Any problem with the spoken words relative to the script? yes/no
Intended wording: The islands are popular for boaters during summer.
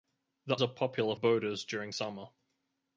yes